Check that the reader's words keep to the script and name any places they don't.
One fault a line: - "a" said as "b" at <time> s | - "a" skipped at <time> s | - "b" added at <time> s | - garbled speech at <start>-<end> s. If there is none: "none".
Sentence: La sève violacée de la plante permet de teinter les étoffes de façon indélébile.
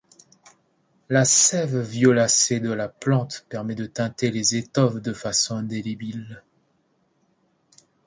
none